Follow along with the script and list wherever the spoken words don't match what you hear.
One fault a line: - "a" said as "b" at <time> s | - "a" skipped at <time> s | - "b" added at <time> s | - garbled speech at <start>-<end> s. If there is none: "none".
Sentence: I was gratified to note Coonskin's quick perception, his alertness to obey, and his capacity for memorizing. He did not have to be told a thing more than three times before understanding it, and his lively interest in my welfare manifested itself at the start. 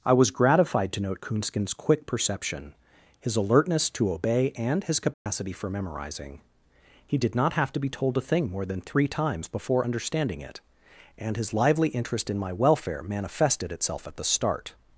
none